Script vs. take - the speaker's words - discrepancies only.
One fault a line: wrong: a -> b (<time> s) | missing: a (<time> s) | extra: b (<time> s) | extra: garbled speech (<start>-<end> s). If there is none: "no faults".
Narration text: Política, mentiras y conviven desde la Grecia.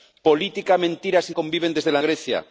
no faults